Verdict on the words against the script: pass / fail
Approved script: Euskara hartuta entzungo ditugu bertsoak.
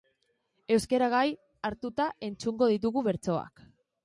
fail